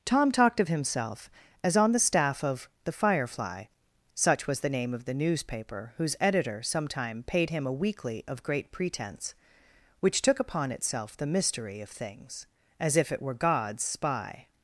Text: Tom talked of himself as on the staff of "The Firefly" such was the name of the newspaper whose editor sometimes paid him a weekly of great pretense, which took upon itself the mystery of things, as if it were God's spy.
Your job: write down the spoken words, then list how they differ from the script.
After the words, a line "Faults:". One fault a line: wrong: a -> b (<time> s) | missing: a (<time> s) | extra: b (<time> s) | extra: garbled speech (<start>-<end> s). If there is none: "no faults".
Tom talked of himself as on the staff of "The Firefly" such was the name of the newspaper whose editor sometime paid him a weekly of great pretense, which took upon itself the mystery of things, as if it were God's spy.
Faults:
wrong: sometimes -> sometime (6.6 s)